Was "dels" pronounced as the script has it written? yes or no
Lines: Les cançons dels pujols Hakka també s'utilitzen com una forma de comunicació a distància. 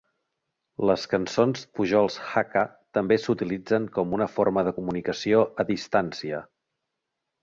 no